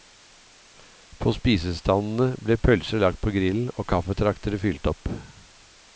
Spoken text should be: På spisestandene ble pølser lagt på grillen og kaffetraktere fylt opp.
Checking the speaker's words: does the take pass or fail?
pass